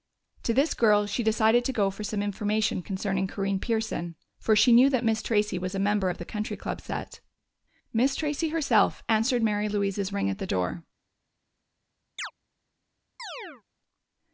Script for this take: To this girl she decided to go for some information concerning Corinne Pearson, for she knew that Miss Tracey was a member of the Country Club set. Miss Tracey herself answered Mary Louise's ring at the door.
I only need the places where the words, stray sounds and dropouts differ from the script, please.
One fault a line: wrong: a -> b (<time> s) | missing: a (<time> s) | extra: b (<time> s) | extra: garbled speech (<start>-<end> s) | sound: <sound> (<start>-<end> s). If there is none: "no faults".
sound: chirp (12.2-12.3 s)
sound: chirp (13.2-13.6 s)